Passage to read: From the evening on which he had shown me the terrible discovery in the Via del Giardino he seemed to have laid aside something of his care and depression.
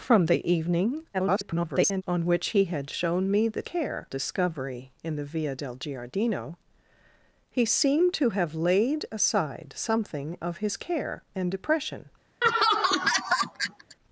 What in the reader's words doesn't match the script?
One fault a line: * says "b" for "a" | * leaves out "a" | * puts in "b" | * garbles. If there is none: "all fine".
* garbles
* says "care" for "terrible"